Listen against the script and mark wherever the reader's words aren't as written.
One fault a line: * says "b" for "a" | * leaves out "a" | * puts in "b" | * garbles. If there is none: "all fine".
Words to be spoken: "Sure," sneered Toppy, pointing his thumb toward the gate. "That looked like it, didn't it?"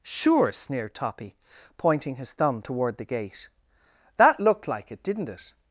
all fine